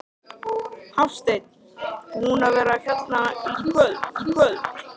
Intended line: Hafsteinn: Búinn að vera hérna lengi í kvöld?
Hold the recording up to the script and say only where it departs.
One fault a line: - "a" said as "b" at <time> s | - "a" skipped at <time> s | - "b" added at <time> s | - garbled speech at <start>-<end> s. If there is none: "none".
- "lengi" said as "kvöld" at 3.6 s